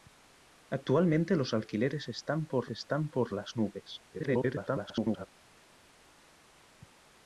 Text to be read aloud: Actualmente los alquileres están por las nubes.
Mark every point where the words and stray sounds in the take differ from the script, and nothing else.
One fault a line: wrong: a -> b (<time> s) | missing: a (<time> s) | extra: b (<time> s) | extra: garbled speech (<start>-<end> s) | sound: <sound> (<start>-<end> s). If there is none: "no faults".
extra: están por (2.7 s)
extra: garbled speech (4.1-5.3 s)